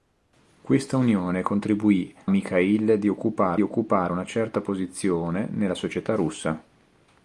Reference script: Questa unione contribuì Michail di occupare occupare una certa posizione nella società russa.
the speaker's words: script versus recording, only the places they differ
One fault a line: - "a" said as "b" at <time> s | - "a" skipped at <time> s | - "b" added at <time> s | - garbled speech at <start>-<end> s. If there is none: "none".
none